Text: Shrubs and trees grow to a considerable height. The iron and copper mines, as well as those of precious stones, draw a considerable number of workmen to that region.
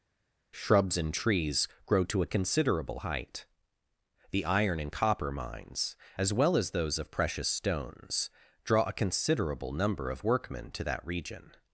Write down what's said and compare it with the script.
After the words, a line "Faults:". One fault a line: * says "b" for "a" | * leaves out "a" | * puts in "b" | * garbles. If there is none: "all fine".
Shrubs and trees grow to a considerable height. The iron and copper mines, as well as those of precious stones, draw a considerable number of workmen to that region.
Faults:
all fine